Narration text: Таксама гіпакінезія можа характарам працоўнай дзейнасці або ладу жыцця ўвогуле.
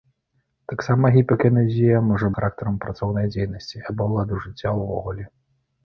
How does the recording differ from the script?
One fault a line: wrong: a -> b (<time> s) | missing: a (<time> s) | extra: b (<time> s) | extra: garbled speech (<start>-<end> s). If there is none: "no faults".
no faults